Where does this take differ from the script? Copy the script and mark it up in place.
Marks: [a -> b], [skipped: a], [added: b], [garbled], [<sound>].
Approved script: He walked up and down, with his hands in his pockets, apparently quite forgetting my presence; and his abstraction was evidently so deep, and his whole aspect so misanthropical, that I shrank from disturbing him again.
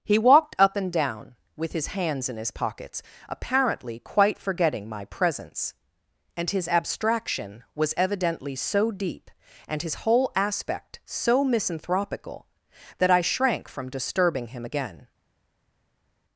He walked up and down, with his hands in his pockets, apparently quite forgetting my presence; and his abstraction was evidently so deep, and his whole aspect so misanthropical, that I shrank from disturbing him again.